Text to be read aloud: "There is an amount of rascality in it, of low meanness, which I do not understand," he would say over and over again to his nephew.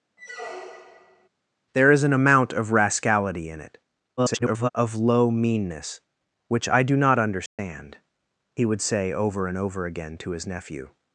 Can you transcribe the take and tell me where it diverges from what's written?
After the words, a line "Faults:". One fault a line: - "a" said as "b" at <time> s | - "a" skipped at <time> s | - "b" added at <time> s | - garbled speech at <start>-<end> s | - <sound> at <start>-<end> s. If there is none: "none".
"There is an amount of rascality in it, [garbled] of low meanness, which I do not understand," he would say over and over again to his nephew.
Faults:
- squeak at 0.2-1.3 s
- garbled speech at 4.2-4.7 s
- dropout at 7.5-7.6 s